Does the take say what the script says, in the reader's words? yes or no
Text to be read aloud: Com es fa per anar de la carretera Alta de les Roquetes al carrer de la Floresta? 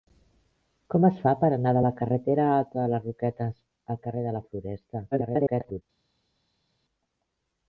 no